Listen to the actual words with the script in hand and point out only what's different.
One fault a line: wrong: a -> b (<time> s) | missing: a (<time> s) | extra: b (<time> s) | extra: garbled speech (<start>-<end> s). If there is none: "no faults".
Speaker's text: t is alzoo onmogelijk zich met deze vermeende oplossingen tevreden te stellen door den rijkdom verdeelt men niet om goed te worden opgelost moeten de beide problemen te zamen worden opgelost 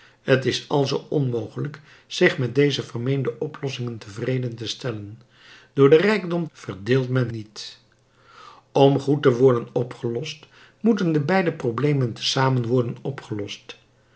no faults